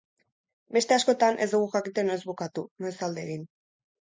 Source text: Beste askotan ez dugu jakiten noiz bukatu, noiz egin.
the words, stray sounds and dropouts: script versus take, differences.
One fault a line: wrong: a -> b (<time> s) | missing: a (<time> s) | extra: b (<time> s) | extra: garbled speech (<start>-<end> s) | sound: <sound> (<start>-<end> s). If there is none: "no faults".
extra: alde (3.1 s)